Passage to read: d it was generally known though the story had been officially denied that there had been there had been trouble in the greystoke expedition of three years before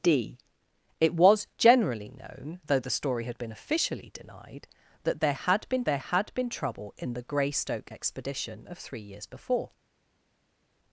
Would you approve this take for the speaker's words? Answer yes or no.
yes